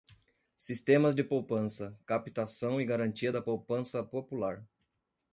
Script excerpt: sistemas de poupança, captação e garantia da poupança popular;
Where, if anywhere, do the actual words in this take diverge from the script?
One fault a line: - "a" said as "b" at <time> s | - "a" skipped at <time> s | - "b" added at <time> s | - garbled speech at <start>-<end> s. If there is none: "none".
none